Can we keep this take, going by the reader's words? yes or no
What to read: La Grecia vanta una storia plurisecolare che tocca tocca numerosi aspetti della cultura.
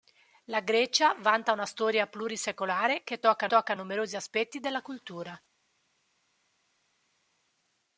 yes